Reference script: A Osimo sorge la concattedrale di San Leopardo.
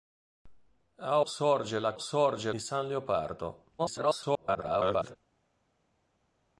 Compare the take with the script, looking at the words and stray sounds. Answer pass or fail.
fail